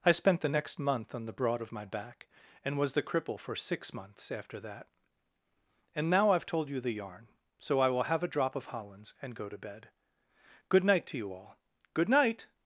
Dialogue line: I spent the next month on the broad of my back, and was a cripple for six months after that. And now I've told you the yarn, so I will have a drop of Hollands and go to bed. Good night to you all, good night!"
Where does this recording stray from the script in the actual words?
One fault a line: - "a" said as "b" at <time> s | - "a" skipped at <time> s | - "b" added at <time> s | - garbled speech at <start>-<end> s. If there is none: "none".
- "a" said as "the" at 2.9 s